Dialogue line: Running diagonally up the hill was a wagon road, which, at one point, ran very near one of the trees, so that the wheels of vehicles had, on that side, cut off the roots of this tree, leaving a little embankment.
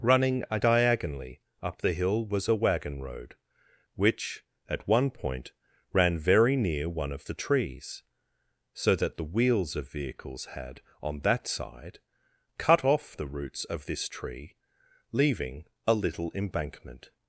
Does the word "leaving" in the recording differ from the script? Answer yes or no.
no